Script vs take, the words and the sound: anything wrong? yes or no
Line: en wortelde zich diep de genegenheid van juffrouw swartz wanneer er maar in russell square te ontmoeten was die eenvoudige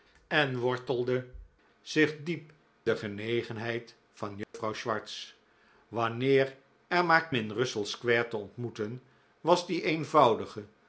yes